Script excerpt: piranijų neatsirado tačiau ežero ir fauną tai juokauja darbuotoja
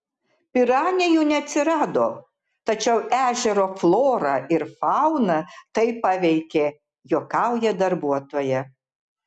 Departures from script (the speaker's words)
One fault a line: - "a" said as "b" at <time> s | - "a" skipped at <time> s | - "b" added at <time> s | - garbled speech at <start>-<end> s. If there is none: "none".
- "florą" added at 3.8 s
- "paveikė" added at 6.1 s